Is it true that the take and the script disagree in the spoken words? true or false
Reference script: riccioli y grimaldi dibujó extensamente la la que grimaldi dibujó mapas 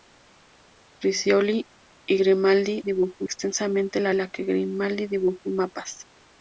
false